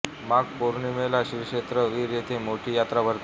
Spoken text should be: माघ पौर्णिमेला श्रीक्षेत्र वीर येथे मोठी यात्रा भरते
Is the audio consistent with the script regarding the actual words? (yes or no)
yes